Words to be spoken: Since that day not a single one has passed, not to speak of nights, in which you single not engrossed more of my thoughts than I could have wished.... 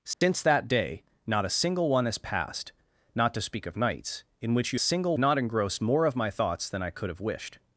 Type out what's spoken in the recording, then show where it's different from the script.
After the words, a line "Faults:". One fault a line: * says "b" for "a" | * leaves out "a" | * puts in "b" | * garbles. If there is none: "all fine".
Since that day not a single one has passed, not to speak of nights, in which you single not engrossed more of my thoughts than I could have wished....
Faults:
all fine